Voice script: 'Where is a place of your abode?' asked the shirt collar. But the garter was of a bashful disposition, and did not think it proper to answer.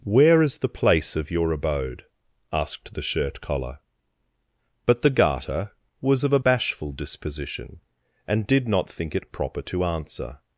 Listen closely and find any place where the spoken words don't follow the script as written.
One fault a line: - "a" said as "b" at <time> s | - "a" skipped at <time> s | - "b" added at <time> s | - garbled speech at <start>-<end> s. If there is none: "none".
- "a" said as "the" at 0.6 s